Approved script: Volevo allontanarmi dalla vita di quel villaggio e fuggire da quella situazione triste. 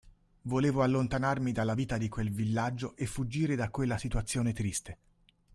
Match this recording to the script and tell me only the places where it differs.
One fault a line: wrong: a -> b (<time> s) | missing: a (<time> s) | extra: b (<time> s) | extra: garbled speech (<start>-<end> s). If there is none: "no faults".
no faults